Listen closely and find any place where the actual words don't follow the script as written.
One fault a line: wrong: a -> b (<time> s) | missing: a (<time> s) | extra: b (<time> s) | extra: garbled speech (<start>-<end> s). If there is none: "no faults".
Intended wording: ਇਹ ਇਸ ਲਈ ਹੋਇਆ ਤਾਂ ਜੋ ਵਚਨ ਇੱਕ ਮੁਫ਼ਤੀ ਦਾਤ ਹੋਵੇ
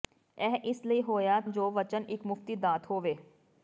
missing: ਤਾਂ (1.4 s)